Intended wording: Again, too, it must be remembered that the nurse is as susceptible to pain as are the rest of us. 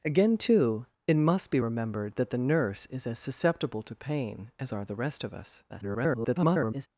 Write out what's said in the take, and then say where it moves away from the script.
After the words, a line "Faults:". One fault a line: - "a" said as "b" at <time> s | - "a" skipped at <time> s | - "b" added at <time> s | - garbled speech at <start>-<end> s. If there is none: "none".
Again, too, it must be remembered that the nurse is as susceptible to pain as are the rest of us. [garbled]
Faults:
- garbled speech at 5.7-6.9 s